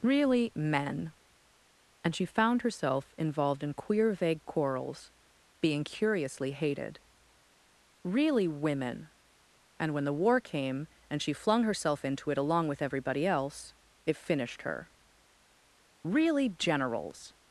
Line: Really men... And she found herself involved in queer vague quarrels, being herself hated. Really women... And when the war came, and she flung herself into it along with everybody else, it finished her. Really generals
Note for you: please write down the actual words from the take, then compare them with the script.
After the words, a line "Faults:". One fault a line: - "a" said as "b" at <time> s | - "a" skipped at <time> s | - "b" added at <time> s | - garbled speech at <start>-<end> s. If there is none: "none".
Really men... And she found herself involved in queer vague quarrels, being curiously hated. Really women... And when the war came, and she flung herself into it along with everybody else, it finished her. Really generals
Faults:
- "herself" said as "curiously" at 5.8 s